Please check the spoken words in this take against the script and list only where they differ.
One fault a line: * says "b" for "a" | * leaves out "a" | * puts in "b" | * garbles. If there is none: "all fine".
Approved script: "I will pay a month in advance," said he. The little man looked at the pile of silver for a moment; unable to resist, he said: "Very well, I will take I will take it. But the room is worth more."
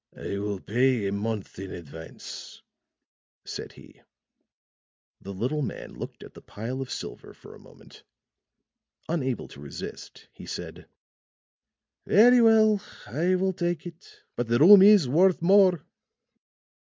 * leaves out "I will take"